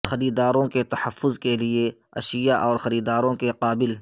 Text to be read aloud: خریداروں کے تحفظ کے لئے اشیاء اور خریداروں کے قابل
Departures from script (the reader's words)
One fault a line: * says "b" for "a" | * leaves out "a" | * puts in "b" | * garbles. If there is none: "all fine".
all fine